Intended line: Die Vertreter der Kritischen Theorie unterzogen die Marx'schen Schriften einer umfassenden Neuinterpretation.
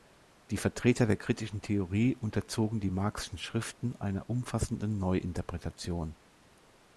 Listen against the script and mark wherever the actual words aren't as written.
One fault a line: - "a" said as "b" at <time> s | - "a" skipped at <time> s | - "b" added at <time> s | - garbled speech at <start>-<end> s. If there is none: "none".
none